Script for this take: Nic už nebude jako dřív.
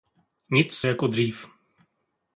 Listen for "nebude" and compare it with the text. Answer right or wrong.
wrong